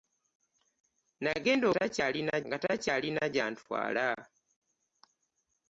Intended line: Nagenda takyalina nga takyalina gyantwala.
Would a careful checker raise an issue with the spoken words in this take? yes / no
no